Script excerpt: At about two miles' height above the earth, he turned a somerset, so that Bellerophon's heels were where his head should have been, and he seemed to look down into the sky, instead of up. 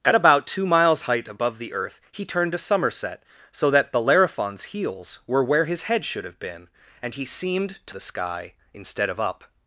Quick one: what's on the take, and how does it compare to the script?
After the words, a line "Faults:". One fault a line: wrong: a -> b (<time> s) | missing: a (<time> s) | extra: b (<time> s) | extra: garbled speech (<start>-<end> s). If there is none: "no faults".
At about two miles' height above the earth, he turned a somerset, so that Bellerophon's heels were where his head should have been, and he seemed to the sky, instead of up.
Faults:
missing: look down into (8.0 s)